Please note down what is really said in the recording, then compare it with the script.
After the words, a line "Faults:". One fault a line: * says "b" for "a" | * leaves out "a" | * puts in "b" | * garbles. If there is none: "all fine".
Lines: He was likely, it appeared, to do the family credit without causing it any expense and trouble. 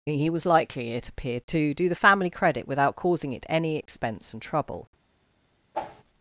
He was likely, it appeared, to do the family credit without causing it any expense and trouble.
Faults:
all fine